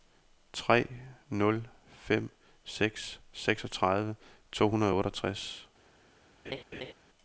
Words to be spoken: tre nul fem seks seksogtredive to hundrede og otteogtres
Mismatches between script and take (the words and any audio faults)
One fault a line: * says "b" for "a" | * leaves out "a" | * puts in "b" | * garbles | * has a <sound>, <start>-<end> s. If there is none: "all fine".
* has a laugh, 6.5-6.9 s